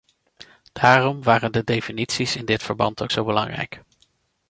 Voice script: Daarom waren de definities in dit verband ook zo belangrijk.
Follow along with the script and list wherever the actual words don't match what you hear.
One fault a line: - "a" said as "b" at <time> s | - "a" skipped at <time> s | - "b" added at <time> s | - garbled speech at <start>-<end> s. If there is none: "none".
none